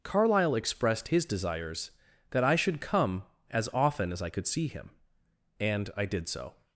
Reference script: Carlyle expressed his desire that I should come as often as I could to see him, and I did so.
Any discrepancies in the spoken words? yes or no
yes